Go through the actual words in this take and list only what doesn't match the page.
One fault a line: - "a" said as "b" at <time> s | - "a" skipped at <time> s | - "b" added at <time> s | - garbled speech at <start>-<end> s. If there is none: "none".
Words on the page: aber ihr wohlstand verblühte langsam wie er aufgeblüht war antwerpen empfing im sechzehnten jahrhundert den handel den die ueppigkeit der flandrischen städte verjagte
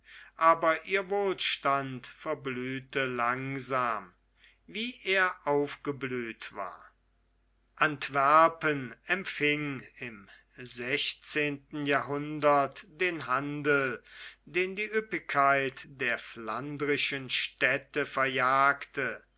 none